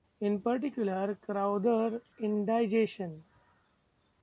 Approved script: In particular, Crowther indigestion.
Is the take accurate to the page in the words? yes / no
yes